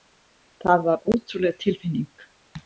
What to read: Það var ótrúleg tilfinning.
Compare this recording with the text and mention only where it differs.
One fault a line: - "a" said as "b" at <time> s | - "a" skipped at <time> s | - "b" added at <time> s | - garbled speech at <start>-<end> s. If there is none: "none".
none